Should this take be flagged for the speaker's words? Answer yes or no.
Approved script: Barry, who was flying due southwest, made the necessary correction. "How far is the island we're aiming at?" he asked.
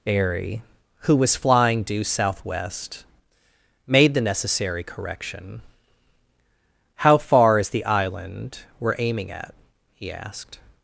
yes